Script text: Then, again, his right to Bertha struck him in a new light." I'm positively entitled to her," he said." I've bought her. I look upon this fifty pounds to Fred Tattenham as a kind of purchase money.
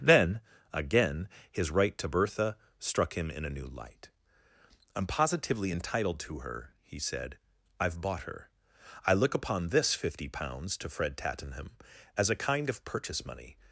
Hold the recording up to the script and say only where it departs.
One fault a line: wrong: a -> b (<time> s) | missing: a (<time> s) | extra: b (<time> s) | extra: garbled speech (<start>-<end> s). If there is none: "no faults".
no faults